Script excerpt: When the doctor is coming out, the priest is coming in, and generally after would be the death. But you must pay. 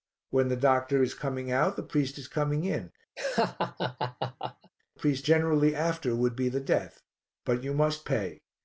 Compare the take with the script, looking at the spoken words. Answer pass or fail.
fail